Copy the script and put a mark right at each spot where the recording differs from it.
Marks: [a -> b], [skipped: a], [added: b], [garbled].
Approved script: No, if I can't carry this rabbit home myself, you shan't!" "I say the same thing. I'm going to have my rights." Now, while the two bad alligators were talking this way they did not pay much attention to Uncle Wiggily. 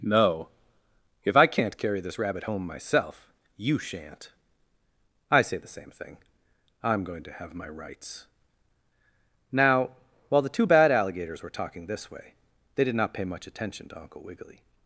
No, if I can't carry this rabbit home myself, you shan't!" "I say the same thing. I'm going to have my rights." Now, while the two bad alligators were talking this way they did not pay much attention to Uncle Wiggily.